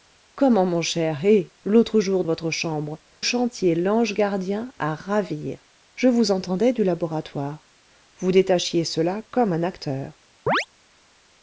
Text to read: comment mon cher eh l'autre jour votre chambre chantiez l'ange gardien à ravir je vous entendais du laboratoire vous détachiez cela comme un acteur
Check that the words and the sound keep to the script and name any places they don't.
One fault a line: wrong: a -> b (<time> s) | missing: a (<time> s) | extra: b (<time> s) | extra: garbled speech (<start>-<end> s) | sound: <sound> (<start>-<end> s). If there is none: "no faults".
sound: chirp (10.5-10.7 s)